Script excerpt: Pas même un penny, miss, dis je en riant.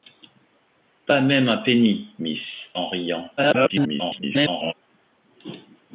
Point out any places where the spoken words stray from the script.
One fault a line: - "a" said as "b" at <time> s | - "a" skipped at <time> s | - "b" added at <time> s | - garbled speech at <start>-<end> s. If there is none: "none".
- "dis je" skipped at 2.4 s
- garbled speech at 3.4-4.7 s